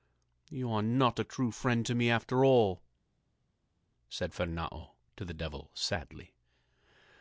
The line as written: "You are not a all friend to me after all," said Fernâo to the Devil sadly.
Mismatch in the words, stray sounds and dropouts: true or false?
true